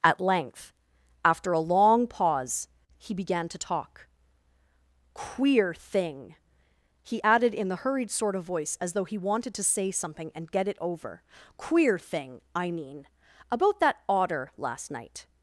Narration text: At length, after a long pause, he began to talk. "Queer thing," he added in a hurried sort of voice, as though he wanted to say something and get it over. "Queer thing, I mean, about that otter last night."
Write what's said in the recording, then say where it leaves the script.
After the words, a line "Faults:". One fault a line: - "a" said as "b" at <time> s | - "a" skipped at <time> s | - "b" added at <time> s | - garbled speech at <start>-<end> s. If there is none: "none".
At length, after a long pause, he began to talk. "Queer thing," he added in the hurried sort of voice, as though he wanted to say something and get it over. "Queer thing, I mean, about that otter last night."
Faults:
- "a" said as "the" at 7.7 s